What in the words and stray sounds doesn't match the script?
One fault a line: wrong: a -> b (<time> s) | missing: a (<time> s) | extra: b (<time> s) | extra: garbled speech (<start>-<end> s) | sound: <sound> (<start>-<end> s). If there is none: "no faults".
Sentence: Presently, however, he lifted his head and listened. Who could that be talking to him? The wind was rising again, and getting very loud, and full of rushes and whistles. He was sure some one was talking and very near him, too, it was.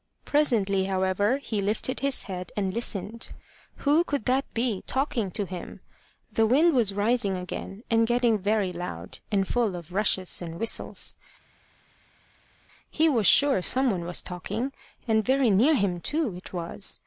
no faults